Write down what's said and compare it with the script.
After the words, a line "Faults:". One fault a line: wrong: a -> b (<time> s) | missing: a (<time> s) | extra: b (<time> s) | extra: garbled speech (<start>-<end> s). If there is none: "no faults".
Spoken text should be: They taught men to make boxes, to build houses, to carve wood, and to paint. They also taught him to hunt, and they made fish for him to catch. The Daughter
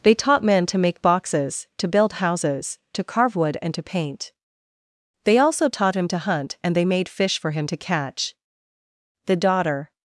They taught men to make boxes, to build houses, to carve wood, and to paint. They also taught him to hunt, and they made fish for him to catch. The Daughter
Faults:
no faults